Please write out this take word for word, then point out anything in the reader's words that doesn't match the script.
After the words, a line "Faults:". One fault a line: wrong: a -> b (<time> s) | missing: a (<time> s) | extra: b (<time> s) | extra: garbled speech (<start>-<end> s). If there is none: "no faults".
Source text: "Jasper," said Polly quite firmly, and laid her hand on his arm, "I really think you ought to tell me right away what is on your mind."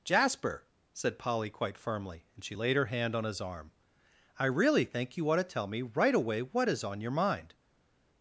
"Jasper," said Polly quite firmly, and she laid her hand on his arm, "I really think you ought to tell me right away what is on your mind."
Faults:
extra: she (2.4 s)